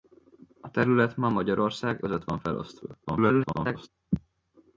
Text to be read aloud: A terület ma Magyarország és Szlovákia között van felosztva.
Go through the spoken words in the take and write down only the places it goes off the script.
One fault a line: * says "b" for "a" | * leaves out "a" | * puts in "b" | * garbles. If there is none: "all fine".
* leaves out "és Szlovákia"
* garbles